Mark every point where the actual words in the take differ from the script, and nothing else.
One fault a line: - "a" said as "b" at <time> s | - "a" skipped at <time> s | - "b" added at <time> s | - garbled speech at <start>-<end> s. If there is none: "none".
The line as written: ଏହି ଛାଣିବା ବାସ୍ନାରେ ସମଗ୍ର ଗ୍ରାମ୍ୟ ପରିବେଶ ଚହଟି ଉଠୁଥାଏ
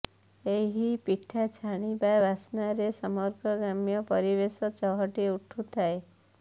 - "ପିଠା" added at 1.0 s